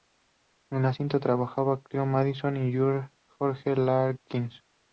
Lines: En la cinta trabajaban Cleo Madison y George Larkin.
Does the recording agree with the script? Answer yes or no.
yes